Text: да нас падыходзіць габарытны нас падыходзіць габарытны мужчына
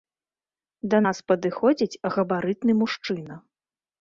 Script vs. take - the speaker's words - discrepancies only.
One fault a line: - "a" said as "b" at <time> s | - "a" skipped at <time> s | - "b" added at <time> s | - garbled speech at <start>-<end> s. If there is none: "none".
- "нас падыходзіць габарытны" skipped at 2.7 s